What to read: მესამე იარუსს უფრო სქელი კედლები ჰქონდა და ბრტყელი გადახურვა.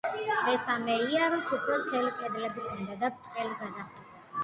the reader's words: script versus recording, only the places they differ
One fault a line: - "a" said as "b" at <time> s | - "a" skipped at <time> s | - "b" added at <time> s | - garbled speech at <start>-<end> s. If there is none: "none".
none